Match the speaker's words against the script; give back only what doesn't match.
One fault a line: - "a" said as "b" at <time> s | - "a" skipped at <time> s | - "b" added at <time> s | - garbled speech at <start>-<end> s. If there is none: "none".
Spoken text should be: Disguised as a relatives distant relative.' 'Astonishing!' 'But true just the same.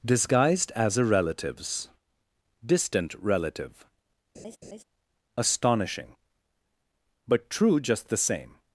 none